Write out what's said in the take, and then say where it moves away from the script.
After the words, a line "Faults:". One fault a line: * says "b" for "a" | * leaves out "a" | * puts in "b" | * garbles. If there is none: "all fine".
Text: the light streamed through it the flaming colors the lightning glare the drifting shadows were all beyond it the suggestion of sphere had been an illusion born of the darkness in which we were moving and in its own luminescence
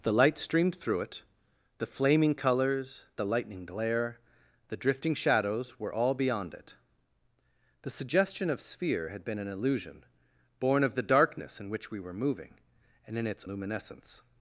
the light streamed through it the flaming colors the lightning glare the drifting shadows were all beyond it the suggestion of sphere had been an illusion born of the darkness in which we were moving and in its luminescence
Faults:
* leaves out "own"